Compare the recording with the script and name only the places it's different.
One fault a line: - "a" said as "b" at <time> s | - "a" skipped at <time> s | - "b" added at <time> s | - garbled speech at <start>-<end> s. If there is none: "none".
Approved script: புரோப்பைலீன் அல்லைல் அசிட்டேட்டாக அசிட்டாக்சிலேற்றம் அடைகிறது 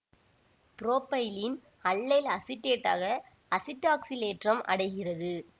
none